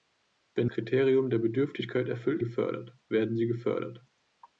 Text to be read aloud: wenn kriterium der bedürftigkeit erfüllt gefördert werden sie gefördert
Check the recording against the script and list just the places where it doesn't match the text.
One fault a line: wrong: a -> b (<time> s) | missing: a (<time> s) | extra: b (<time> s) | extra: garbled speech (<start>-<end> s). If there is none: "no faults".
no faults